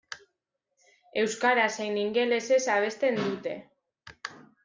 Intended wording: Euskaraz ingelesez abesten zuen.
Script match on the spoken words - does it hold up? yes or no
no